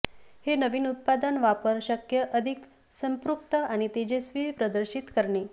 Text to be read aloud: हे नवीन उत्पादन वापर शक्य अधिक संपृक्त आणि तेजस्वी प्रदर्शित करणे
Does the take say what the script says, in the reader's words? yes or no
yes